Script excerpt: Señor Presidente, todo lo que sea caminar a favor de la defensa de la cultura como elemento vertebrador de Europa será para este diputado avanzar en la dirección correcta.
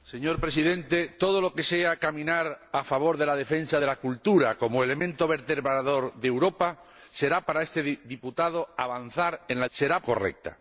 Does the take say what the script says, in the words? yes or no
no